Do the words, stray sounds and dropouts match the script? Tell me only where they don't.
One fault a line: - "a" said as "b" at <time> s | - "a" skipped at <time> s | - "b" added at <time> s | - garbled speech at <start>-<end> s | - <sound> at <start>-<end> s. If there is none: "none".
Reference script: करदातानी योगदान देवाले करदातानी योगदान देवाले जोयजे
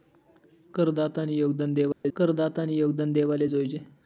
- dropout at 1.9-2.0 s